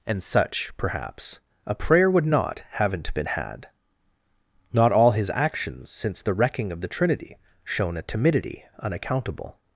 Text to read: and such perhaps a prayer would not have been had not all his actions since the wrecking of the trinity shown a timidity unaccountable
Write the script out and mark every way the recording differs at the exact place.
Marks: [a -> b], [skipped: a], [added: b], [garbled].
and such perhaps a prayer would not [have -> haven't] been had not all his actions since the wrecking of the trinity shown a timidity unaccountable